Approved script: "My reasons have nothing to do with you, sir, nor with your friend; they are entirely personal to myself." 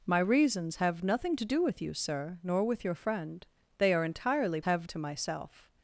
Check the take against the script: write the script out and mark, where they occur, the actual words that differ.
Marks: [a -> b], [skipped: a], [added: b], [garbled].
"My reasons have nothing to do with you, sir, nor with your friend; they are entirely [personal -> have] to myself."